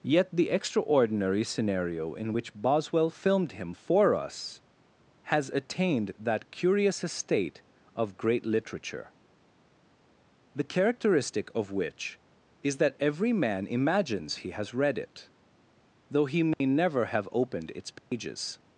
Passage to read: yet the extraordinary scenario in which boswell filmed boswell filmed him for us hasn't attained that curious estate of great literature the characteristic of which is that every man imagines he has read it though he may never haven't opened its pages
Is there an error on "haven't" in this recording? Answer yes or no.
yes